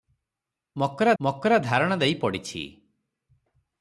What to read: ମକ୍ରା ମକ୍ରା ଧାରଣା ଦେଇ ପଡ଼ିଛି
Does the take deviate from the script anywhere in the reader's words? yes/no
no